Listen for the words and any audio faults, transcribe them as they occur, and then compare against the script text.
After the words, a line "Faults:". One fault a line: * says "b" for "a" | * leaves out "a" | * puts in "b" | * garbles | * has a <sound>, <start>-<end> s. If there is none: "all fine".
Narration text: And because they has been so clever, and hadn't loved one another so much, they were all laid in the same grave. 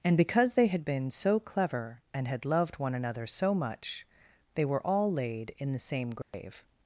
And because they had been so clever, and had loved one another so much, they were all laid in the same grave.
Faults:
* says "had" for "has"
* says "had" for "hadn't"
* has a dropout, 6.2-6.3 s